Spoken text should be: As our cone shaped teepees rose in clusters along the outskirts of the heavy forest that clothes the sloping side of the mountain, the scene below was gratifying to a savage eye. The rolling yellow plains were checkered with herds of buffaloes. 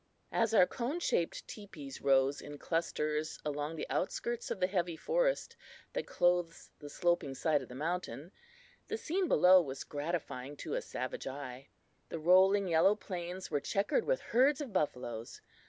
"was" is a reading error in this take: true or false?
false